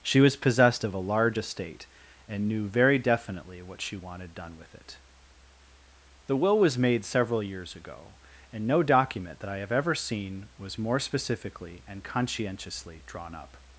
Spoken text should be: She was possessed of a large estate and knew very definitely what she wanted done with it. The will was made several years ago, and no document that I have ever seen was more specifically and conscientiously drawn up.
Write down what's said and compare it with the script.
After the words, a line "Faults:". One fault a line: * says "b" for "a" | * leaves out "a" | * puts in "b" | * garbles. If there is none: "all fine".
She was possessed of a large estate and knew very definitely what she wanted done with it. The will was made several years ago, and no document that I have ever seen was more specifically and conscientiously drawn up.
Faults:
all fine